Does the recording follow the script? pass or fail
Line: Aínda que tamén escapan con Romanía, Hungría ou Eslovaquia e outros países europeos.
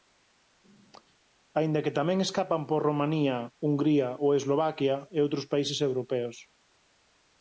fail